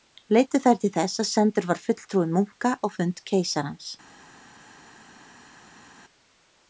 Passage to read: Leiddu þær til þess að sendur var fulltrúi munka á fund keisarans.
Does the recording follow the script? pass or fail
pass